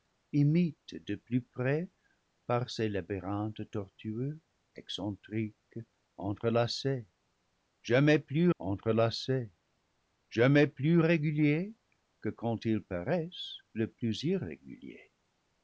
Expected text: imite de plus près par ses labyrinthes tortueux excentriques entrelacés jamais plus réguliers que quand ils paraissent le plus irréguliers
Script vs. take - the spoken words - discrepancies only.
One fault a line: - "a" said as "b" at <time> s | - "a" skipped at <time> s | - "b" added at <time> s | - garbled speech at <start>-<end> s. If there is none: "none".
- "entrelacés jamais plus" added at 8.6 s